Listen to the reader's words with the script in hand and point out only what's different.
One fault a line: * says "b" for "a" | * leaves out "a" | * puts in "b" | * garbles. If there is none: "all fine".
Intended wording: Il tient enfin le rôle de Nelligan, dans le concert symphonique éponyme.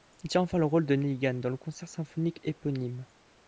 all fine